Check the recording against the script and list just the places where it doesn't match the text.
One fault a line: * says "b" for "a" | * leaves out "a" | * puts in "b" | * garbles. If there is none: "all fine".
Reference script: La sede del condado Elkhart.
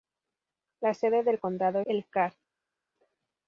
all fine